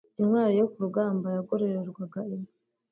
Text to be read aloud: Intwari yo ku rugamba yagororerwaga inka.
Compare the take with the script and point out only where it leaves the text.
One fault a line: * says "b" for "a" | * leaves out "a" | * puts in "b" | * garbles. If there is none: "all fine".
all fine